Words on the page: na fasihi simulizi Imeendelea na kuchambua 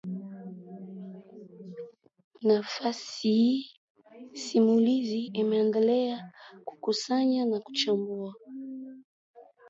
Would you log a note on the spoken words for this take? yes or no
yes